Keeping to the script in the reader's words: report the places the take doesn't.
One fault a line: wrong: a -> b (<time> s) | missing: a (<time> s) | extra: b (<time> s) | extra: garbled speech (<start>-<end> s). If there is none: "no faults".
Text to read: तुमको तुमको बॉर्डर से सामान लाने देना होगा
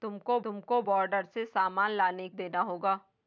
no faults